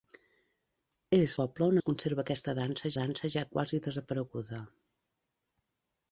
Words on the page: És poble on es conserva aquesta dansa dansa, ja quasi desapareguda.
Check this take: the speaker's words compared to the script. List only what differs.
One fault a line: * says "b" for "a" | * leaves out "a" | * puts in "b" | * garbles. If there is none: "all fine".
all fine